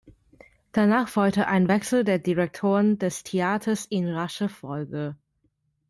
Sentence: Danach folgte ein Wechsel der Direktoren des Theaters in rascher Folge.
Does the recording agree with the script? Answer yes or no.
yes